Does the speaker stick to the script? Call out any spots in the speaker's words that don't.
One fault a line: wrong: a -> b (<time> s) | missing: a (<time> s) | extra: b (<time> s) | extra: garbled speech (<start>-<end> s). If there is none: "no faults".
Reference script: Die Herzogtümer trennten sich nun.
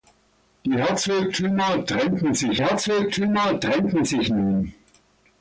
extra: Herzogtümer trennten sich (2.6 s)